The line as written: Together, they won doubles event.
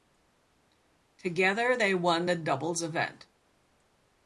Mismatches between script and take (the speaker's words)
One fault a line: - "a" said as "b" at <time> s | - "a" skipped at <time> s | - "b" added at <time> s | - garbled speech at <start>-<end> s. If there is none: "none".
- "the" added at 2.3 s